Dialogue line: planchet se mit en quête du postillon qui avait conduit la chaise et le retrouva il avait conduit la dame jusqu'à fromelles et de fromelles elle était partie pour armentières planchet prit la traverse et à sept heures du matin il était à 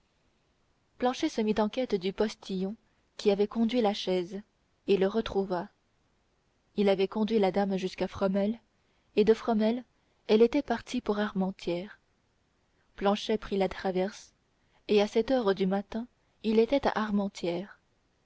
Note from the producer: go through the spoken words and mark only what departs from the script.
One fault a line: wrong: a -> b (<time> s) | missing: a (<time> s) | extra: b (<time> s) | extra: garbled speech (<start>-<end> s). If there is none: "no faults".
no faults